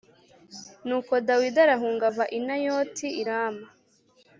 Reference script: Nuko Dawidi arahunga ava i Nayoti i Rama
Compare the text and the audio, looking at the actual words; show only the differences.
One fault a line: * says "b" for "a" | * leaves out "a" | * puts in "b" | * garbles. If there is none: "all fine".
all fine